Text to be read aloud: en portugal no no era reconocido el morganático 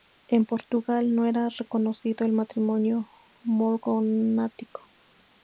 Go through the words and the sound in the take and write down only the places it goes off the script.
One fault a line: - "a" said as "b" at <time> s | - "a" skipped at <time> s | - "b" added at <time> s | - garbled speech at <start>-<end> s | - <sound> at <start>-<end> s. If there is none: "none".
- "no" skipped at 1.3 s
- "matrimonio" added at 2.3 s